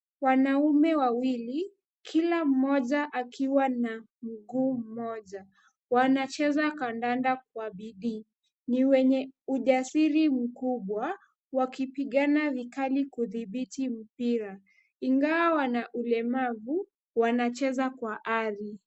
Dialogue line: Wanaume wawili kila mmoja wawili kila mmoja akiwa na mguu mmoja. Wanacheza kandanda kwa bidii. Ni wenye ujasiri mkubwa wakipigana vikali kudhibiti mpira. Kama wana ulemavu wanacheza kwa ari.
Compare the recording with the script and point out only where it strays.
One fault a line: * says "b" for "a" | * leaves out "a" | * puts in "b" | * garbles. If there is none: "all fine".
* leaves out "wawili kila mmoja"
* says "Ingawa" for "Kama"